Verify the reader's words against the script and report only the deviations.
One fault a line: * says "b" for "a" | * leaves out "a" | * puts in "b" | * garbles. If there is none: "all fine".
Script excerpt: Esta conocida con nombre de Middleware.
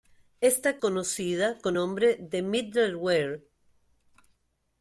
all fine